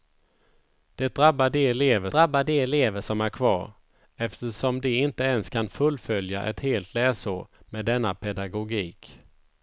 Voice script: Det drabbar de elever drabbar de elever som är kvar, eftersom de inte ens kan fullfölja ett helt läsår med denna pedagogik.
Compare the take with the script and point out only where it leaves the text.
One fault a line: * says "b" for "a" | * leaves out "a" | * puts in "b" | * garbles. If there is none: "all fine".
all fine